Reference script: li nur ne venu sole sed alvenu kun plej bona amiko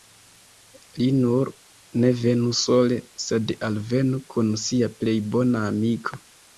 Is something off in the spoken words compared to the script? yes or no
yes